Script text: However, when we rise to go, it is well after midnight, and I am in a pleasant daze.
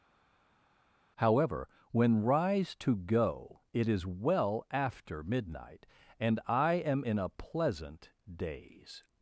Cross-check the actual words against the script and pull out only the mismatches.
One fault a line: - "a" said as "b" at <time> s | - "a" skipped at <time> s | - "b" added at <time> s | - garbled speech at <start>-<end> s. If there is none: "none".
- "we" skipped at 2.2 s